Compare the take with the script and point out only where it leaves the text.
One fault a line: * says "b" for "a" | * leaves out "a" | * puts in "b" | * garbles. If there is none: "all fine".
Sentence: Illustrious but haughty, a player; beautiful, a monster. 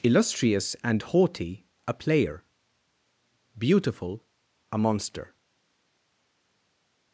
* says "and" for "but"